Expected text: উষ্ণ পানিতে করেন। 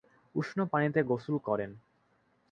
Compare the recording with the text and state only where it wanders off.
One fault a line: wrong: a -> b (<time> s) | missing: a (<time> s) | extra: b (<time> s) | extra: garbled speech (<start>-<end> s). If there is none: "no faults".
extra: গোসল (1.0 s)